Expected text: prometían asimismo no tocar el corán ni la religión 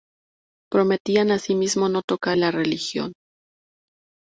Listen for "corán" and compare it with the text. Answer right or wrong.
wrong